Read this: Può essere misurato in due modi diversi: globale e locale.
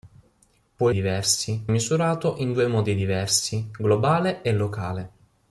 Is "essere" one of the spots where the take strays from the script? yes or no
yes